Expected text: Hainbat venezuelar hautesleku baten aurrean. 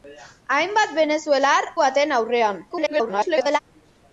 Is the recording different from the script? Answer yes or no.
yes